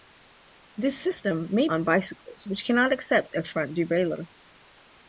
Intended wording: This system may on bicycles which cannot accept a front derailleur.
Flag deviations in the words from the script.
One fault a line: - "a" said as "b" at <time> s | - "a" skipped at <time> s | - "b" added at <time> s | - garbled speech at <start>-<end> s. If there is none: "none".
none